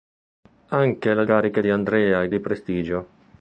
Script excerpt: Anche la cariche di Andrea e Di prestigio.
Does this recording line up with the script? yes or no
yes